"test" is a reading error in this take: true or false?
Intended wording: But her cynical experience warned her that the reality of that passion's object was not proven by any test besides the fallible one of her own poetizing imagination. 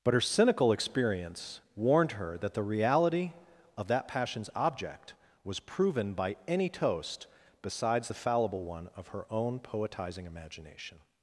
true